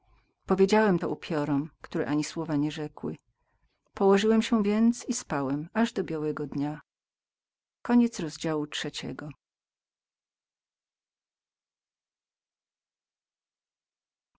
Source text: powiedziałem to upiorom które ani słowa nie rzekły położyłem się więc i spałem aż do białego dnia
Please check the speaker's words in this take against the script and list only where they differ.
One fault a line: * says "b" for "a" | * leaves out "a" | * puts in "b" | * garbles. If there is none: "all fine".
all fine